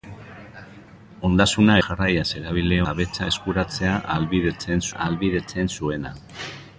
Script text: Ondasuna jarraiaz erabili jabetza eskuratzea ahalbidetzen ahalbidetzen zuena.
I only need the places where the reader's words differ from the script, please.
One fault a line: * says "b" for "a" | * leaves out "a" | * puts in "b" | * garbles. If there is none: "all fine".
all fine